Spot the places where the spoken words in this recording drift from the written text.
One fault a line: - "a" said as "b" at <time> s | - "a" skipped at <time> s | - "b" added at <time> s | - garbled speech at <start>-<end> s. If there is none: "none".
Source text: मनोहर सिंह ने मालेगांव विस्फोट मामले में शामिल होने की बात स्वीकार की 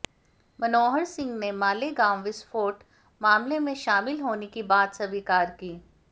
none